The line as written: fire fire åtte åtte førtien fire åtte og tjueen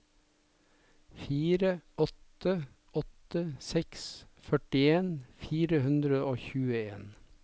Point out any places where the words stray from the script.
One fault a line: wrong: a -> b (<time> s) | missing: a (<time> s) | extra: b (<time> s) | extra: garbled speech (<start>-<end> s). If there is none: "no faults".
wrong: fire -> åtte (2.0 s)
wrong: åtte -> seks (3.7 s)
wrong: åtte -> hundre (5.9 s)